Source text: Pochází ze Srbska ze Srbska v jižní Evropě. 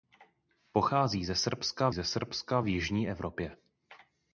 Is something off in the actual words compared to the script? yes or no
no